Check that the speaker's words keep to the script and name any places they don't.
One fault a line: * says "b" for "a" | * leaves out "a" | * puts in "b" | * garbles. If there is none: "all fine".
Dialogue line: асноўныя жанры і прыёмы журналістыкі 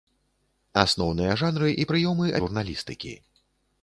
all fine